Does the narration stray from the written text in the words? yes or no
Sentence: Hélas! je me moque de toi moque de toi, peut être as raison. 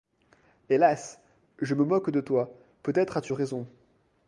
yes